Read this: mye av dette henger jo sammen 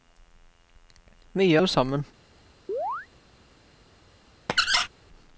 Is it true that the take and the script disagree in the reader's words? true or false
true